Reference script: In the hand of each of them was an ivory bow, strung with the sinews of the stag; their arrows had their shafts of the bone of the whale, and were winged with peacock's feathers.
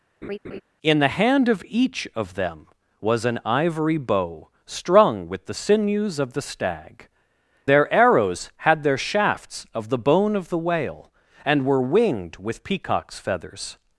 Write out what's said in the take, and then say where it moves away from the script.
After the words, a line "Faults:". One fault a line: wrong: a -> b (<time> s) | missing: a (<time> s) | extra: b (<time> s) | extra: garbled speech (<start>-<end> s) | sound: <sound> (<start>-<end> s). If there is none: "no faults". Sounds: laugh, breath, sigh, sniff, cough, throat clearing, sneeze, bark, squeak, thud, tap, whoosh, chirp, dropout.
In the hand of each of them was an ivory bow, strung with the sinews of the stag; their arrows had their shafts of the bone of the whale, and were winged with peacock's feathers.
Faults:
sound: laugh (0.2-0.6 s)